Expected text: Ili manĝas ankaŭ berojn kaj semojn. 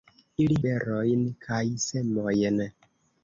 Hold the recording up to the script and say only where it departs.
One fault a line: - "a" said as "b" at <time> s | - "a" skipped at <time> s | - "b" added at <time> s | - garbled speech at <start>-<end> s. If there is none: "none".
- "manĝas ankaŭ" skipped at 0.6 s